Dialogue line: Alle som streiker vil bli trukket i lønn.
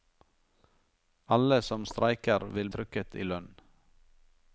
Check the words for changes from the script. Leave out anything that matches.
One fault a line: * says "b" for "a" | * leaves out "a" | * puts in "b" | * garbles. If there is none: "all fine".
* leaves out "bli"